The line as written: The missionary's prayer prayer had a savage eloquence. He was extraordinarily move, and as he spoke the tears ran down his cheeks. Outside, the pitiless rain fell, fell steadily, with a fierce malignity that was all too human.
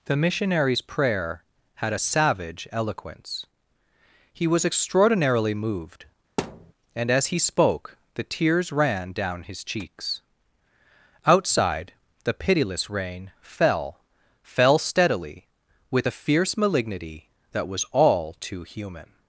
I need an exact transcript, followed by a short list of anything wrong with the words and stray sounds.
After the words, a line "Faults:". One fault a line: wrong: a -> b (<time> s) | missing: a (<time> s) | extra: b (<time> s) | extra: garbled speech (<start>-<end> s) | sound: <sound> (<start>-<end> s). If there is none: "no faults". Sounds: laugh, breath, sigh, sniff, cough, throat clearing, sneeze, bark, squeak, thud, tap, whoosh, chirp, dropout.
The missionary's prayer had a savage eloquence. He was extraordinarily moved, and as he spoke the tears ran down his cheeks. Outside, the pitiless rain fell, fell steadily, with a fierce malignity that was all too human.
Faults:
missing: prayer (1.4 s)
wrong: move -> moved (5.5 s)
sound: thud (6.4-6.7 s)